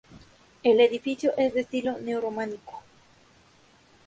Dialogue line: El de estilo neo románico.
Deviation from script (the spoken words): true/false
true